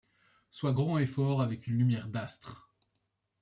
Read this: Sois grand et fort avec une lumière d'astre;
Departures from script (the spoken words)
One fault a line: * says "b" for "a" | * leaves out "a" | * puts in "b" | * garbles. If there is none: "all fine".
all fine